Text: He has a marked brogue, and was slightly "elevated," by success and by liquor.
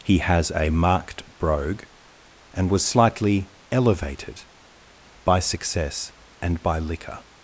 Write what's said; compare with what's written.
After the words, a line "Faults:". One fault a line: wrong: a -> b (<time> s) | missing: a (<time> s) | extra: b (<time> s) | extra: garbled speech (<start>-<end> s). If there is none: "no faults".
He has a marked brogue, and was slightly "elevated," by success and by liquor.
Faults:
no faults